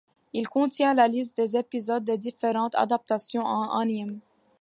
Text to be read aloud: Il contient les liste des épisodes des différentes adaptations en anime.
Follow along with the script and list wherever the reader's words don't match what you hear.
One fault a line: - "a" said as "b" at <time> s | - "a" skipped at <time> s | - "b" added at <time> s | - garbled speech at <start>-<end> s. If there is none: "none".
- "les" said as "la" at 0.9 s